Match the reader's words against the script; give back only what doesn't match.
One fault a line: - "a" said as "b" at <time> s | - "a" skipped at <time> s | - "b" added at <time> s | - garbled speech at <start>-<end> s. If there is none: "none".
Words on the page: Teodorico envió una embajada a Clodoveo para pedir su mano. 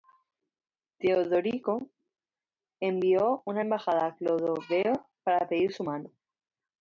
none